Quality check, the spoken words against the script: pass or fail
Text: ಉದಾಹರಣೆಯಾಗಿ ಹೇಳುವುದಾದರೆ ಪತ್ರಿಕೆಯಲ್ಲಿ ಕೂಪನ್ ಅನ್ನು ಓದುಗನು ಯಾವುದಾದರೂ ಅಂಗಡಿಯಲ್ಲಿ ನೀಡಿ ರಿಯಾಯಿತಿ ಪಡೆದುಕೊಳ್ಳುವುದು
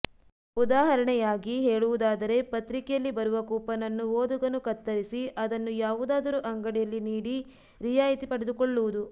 fail